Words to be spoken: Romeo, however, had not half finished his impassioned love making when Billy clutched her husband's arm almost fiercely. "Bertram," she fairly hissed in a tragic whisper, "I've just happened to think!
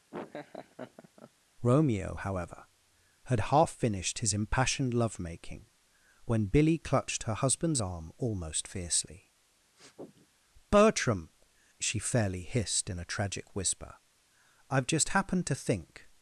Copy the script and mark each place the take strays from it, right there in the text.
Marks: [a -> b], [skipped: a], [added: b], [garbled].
Romeo, however, had [skipped: not] half finished his impassioned love making when Billy clutched her husband's arm almost fiercely. "Bertram," she fairly hissed in a tragic whisper, "I've just happened to think!